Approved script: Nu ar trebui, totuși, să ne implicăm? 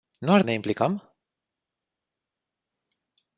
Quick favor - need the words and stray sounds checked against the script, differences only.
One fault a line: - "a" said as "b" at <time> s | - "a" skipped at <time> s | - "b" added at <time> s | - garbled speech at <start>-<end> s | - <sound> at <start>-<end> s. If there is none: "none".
- "trebui totuși să" skipped at 0.4 s